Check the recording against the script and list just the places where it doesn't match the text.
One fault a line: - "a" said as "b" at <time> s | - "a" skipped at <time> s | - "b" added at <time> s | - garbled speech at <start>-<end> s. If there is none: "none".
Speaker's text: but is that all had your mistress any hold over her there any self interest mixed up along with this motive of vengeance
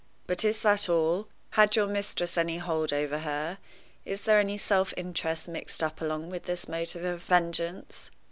- "is" added at 4.0 s